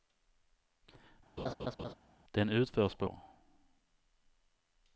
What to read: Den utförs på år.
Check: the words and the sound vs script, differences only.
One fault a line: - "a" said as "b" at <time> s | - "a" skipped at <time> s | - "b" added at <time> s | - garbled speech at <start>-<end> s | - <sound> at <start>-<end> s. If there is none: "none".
- laugh at 1.4-1.9 s